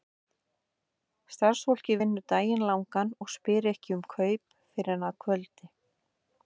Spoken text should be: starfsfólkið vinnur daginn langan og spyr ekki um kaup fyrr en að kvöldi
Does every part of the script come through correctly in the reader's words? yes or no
yes